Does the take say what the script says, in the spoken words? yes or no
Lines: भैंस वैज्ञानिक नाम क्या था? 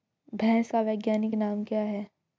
no